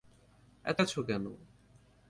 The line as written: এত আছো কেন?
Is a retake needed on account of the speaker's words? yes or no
no